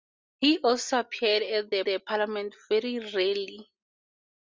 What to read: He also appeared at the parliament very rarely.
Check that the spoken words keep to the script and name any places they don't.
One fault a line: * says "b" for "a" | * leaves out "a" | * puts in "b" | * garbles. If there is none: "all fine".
* puts in "the"